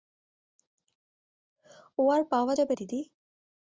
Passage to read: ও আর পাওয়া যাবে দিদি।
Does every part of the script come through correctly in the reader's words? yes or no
yes